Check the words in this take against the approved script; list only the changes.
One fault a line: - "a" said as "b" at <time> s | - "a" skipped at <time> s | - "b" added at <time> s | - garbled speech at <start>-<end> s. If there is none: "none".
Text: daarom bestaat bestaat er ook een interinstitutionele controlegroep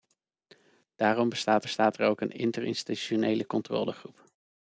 none